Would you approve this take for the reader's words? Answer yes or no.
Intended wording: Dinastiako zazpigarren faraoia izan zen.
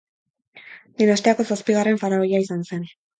yes